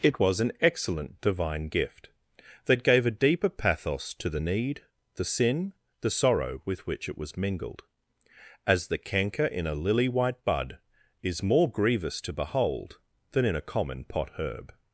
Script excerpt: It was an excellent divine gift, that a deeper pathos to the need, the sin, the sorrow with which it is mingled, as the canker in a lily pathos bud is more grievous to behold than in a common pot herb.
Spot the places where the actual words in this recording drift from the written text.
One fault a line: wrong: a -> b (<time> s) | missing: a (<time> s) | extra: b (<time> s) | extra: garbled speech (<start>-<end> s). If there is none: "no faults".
extra: gave (2.8 s)
wrong: is -> was (7.2 s)
wrong: pathos -> white (10.1 s)